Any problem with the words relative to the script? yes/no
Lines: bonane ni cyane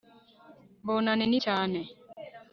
no